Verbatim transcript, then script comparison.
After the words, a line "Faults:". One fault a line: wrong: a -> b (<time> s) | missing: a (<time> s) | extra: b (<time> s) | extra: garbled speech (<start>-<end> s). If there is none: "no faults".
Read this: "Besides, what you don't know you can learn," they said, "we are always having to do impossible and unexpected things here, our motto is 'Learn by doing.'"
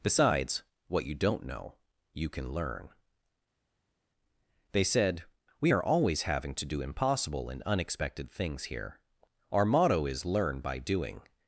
"Besides, what you don't know you can learn," they said, "we are always having to do impossible and unexpected things here, our motto is 'Learn by doing.'"
Faults:
no faults